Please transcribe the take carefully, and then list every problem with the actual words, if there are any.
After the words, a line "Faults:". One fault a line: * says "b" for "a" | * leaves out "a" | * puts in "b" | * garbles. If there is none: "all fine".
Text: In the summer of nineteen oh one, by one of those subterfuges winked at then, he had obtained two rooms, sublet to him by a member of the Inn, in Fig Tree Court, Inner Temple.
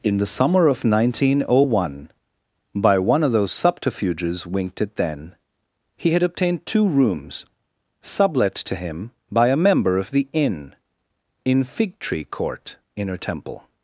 In the summer of nineteen oh one, by one of those subterfuges winked at then, he had obtained two rooms, sublet to him by a member of the Inn, in Fig Tree Court, Inner Temple.
Faults:
all fine